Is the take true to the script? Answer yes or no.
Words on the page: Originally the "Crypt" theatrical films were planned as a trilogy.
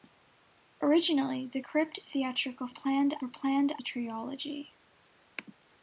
no